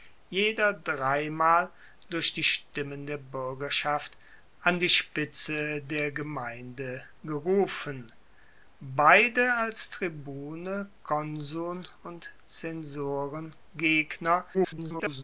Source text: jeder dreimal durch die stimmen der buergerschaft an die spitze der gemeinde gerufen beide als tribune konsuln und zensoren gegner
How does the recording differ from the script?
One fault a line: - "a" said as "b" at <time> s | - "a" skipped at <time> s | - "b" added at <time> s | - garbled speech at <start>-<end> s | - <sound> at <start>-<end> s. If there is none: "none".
- garbled speech at 14.5-15.2 s